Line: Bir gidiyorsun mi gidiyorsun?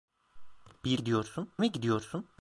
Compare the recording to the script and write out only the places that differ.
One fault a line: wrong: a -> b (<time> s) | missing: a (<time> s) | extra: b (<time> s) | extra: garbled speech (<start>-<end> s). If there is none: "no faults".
no faults